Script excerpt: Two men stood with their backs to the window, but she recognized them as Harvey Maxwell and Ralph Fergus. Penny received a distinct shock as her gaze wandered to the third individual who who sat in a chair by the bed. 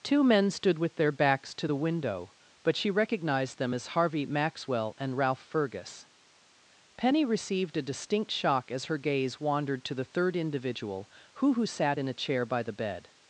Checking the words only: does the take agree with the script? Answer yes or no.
yes